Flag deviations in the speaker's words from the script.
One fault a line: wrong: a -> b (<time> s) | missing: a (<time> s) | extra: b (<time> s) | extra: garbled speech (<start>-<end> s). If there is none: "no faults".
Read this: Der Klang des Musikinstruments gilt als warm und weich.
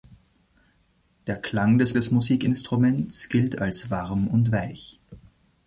extra: des (1.9 s)